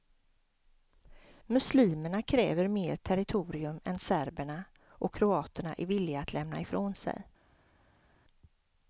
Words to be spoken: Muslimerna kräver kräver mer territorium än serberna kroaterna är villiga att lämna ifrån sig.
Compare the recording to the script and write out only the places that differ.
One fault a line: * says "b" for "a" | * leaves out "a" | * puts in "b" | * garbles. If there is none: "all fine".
* leaves out "kräver"
* puts in "och"